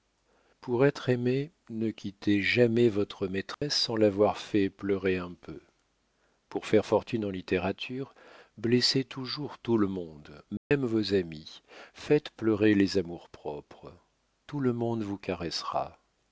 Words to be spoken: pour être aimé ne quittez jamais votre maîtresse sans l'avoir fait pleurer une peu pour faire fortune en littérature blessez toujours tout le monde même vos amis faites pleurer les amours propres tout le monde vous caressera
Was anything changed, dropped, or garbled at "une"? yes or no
yes